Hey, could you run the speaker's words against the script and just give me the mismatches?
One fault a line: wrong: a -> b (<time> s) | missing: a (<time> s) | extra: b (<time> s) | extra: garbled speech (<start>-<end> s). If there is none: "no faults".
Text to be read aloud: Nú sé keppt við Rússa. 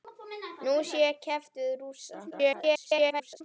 extra: garbled speech (2.3-3.4 s)